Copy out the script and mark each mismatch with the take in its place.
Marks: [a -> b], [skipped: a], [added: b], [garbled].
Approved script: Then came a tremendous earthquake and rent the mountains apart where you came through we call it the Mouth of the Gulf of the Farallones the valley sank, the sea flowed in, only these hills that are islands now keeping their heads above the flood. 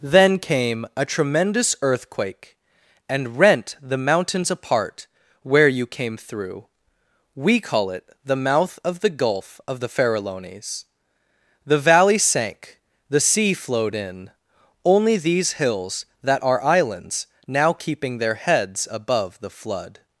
Then came a tremendous earthquake and rent the mountains apart where you came through we call it the Mouth of the Gulf of the Farallones the valley sank, the sea flowed in, only these hills that are islands now keeping their heads above the flood.